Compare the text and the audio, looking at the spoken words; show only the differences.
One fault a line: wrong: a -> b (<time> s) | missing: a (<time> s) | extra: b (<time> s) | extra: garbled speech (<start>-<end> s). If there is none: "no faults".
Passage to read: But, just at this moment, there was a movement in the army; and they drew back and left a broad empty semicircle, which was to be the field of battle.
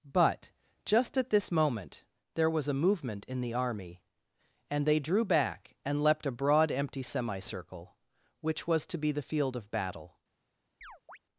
wrong: left -> leapt (6.0 s)